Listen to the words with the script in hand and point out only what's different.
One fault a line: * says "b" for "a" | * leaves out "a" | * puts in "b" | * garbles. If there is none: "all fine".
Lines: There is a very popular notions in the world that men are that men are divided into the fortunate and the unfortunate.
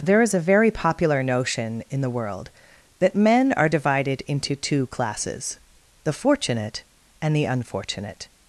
* says "notion" for "notions"
* says "divided into two classes" for "that men are divided into"